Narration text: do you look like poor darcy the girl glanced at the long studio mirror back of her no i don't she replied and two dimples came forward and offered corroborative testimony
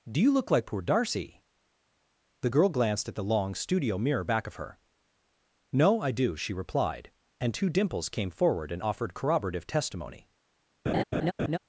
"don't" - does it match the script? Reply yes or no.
no